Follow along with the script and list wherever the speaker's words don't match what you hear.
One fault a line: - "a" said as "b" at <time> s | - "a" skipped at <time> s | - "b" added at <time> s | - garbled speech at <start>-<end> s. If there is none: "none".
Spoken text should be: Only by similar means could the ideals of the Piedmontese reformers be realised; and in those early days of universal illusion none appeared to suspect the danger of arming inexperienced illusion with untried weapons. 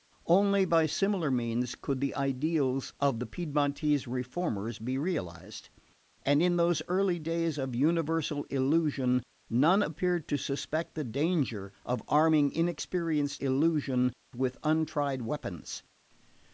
none